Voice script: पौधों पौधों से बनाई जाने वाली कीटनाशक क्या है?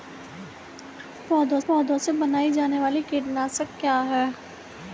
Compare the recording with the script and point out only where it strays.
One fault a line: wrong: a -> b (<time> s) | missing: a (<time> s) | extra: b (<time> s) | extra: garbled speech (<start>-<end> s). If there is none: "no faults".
no faults